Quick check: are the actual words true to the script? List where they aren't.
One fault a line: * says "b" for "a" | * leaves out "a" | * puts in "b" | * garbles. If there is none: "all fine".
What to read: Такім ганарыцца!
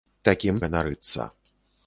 all fine